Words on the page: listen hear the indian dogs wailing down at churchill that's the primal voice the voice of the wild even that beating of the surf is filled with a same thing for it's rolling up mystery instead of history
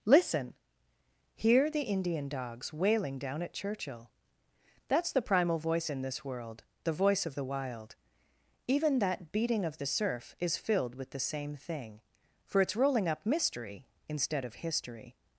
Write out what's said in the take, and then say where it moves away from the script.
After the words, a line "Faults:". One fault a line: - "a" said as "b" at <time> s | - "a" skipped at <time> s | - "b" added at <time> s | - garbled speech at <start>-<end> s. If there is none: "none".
listen hear the indian dogs wailing down at churchill that's the primal voice in this world the voice of the wild even that beating of the surf is filled with the same thing for it's rolling up mystery instead of history
Faults:
- "in this world" added at 5.9 s
- "a" said as "the" at 11.1 s